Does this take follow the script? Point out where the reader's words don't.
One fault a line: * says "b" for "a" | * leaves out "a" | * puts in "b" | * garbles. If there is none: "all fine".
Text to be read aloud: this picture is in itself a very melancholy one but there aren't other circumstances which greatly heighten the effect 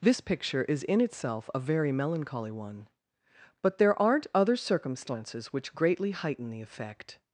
all fine